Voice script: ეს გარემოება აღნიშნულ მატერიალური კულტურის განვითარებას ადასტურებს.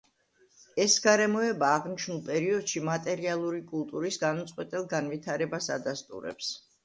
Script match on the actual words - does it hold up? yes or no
no